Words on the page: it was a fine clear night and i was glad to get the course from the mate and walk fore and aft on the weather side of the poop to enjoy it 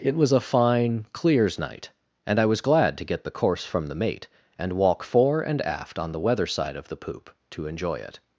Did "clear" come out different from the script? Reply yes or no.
yes